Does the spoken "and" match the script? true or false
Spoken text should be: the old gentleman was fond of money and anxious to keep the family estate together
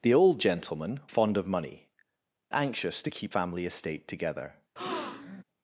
false